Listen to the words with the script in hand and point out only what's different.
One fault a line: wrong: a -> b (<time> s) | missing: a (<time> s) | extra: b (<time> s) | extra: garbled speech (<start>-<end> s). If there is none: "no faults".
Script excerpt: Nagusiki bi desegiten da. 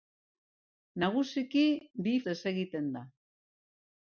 no faults